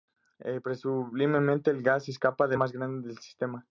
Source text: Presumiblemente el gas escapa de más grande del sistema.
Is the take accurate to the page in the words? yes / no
yes